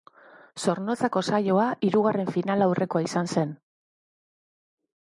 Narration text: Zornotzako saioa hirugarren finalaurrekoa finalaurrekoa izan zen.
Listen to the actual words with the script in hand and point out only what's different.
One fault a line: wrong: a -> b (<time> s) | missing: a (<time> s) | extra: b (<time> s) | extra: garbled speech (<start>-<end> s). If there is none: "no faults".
missing: finalaurrekoa (3.0 s)